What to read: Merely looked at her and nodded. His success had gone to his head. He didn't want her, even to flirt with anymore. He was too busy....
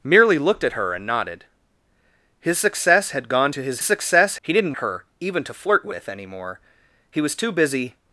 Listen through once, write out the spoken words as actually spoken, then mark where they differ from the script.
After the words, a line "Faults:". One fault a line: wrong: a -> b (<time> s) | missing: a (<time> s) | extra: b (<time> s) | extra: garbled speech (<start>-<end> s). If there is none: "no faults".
Merely looked at her and nodded. His success had gone to his success. He didn't her, even to flirt with anymore. He was too busy....
Faults:
wrong: head -> success (3.8 s)
missing: want (4.7 s)